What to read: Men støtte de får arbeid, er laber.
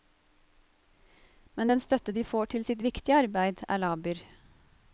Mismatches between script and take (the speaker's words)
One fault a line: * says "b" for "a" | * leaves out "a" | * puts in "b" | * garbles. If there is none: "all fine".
* puts in "den"
* puts in "til sitt viktige"